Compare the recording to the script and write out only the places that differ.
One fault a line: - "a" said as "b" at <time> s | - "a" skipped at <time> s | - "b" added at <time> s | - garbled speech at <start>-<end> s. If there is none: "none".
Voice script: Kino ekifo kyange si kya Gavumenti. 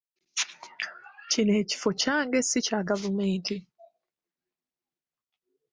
none